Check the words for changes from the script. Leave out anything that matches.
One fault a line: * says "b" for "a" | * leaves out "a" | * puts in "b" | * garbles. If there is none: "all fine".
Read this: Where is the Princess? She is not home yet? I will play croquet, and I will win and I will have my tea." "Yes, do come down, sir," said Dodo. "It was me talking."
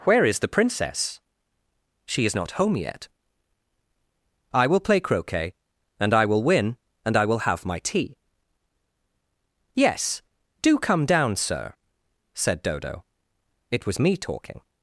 all fine